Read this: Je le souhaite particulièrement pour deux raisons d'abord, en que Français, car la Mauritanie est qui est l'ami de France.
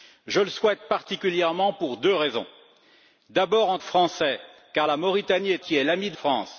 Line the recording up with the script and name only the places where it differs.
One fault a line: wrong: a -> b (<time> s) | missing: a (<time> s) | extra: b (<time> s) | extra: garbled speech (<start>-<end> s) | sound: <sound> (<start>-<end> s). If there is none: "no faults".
no faults